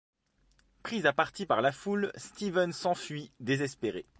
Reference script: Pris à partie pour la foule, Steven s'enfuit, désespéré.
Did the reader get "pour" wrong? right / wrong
wrong